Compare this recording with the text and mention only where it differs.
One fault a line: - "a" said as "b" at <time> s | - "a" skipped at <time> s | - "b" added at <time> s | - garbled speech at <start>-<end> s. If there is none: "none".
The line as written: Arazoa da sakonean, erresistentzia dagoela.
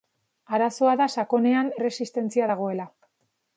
none